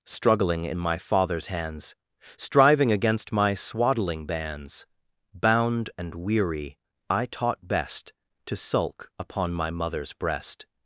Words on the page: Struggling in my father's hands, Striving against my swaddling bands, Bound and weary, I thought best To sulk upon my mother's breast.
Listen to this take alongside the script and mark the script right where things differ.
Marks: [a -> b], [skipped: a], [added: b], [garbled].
Struggling in my father's hands, Striving against my swaddling bands, Bound and weary, I [thought -> taught] best To sulk upon my mother's breast.